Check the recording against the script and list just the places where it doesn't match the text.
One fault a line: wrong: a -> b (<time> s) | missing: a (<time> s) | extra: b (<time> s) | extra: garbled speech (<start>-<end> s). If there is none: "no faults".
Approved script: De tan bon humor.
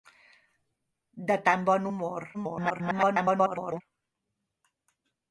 extra: garbled speech (2.3-3.8 s)